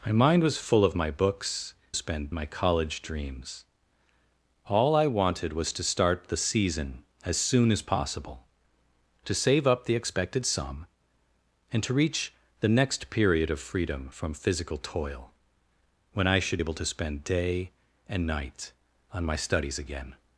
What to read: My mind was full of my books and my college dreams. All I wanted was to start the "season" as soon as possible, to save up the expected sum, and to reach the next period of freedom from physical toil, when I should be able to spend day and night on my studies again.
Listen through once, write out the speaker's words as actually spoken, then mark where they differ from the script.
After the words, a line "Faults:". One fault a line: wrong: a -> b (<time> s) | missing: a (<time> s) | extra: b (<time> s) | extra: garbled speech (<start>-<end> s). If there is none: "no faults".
My mind was full of my books spend my college dreams. All I wanted was to start the "season" as soon as possible, to save up the expected sum, and to reach the next period of freedom from physical toil, when I should able to spend day and night on my studies again.
Faults:
wrong: and -> spend (1.9 s)
missing: be (16.6 s)